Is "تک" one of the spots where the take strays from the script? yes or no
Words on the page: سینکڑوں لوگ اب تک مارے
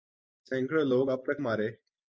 no